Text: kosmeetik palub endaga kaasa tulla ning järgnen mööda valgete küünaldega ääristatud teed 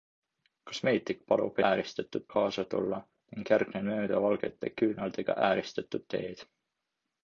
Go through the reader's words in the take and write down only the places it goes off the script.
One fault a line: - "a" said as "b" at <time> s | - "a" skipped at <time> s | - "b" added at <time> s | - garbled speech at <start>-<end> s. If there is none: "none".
- "endaga" said as "ääristatud" at 1.7 s